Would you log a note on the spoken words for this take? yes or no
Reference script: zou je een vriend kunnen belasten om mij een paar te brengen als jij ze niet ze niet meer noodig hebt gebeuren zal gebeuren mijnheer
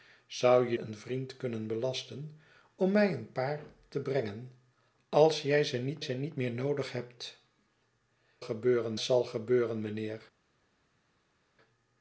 no